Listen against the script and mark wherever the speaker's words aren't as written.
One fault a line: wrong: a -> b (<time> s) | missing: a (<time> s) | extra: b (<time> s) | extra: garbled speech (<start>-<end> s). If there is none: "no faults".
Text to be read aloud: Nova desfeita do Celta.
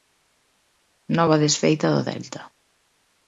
no faults